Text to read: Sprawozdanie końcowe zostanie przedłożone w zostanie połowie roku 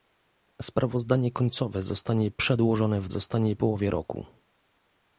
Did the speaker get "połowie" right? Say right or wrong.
right